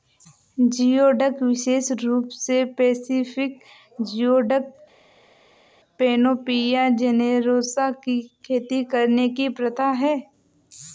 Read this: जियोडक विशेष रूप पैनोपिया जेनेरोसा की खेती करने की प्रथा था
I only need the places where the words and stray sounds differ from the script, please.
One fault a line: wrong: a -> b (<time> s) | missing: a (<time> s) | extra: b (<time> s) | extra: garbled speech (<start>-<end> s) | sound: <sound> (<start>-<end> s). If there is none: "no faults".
extra: से पैसिफिक जियोडक (2.4 s)
wrong: था -> है (10.0 s)